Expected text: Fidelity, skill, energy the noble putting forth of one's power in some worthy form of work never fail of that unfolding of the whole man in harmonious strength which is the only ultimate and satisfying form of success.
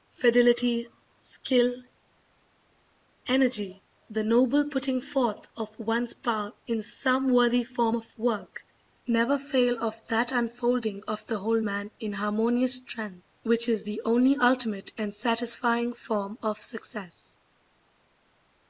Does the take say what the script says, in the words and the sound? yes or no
yes